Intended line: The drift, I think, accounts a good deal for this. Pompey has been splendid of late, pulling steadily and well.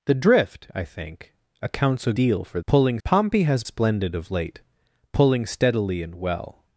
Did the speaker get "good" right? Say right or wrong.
wrong